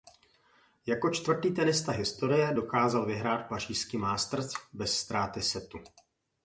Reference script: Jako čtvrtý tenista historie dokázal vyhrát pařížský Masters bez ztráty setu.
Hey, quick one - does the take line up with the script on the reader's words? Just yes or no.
yes